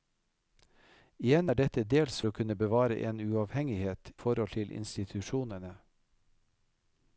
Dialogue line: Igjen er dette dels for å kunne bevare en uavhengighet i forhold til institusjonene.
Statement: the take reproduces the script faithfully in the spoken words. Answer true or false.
false